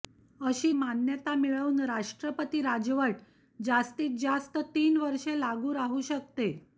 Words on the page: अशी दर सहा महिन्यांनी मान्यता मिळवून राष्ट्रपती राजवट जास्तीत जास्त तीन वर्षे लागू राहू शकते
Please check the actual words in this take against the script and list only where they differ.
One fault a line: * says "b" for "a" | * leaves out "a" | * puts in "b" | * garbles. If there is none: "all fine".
* leaves out "दर सहा महिन्यांनी"